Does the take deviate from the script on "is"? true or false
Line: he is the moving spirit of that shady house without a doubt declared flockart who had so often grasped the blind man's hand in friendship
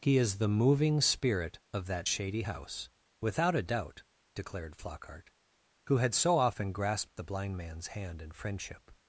false